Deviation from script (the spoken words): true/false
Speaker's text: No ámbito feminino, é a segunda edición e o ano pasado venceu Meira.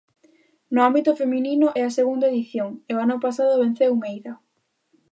false